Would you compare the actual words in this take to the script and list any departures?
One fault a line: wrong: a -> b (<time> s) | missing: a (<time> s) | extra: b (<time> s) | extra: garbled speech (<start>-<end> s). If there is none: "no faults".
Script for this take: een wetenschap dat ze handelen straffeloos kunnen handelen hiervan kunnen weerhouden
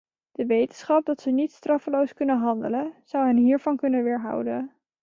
wrong: een -> de (0.3 s)
wrong: handelen -> niet (1.3 s)
extra: zou hen (3.0 s)